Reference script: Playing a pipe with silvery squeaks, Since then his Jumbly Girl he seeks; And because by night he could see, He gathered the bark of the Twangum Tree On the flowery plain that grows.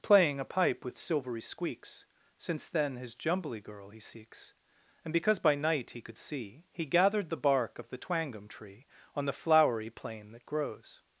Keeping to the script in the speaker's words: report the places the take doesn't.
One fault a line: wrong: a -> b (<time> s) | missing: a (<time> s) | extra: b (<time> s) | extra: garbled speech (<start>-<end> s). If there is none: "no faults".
no faults